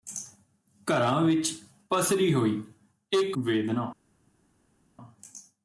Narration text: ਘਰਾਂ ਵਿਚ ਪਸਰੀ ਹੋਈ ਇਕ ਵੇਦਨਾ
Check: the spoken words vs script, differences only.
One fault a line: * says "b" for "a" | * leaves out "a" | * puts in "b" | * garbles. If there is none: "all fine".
all fine